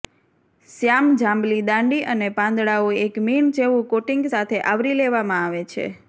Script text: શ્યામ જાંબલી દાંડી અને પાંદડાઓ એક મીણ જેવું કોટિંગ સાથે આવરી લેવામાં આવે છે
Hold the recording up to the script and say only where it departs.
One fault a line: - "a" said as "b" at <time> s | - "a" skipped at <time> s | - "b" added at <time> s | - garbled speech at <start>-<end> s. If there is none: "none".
none